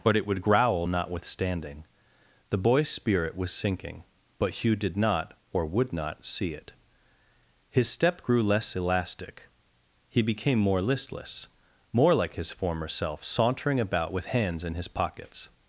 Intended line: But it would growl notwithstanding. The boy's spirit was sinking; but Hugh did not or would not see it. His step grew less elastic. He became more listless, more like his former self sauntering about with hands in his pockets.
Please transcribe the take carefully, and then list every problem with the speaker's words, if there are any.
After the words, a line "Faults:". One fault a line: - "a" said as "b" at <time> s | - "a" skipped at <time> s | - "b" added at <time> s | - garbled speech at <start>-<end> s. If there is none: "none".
But it would growl notwithstanding. The boy's spirit was sinking; but Hugh did not or would not see it. His step grew less elastic. He became more listless, more like his former self sauntering about with hands in his pockets.
Faults:
none